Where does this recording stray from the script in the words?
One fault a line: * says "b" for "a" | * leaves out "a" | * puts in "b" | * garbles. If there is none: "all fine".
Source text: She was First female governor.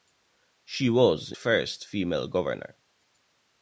all fine